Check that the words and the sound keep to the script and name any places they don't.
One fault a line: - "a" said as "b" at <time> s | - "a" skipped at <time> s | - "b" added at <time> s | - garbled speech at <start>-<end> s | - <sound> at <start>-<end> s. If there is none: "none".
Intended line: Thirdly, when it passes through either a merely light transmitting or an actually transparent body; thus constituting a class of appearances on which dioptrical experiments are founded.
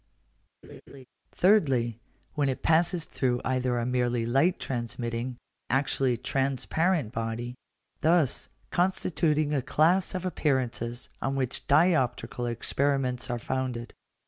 - laugh at 0.6-1.1 s
- "or an" skipped at 5.4 s